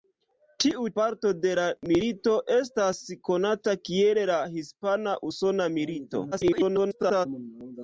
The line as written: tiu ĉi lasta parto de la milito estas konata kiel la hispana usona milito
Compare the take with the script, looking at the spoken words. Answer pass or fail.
fail